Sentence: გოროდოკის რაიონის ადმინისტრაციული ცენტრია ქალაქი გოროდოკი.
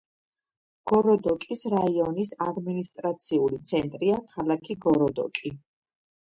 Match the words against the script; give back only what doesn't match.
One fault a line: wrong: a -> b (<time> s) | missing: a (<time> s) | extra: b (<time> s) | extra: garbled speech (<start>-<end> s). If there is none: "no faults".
no faults